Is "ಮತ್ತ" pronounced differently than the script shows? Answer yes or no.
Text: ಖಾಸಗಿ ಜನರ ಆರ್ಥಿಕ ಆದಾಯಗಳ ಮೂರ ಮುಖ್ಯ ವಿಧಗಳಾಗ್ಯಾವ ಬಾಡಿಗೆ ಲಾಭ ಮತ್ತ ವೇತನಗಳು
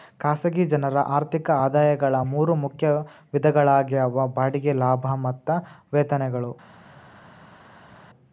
no